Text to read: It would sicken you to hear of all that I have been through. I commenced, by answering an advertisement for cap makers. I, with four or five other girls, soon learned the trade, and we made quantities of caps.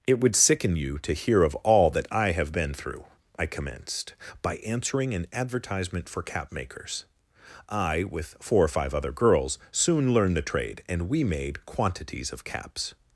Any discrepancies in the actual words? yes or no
no